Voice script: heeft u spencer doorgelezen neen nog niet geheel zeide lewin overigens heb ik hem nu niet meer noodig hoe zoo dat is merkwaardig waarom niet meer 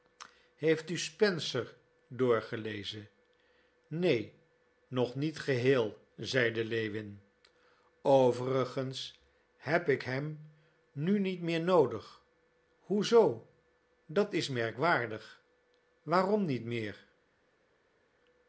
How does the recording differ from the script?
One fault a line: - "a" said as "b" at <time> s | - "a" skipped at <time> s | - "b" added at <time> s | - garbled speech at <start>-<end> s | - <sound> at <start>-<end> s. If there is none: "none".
none